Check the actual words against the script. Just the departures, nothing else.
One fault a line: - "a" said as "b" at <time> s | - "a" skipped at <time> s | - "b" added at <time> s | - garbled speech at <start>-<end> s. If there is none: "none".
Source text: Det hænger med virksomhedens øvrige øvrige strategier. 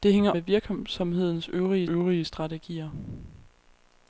none